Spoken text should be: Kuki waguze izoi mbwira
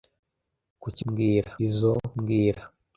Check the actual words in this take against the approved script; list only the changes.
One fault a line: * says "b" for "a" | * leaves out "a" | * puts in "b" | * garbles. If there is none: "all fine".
* says "mbwira" for "waguze"